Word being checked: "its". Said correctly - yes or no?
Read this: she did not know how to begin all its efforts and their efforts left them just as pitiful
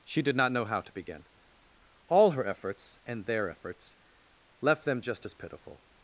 no